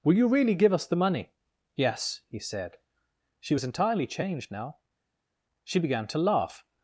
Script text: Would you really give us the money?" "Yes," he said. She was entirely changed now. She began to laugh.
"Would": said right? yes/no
no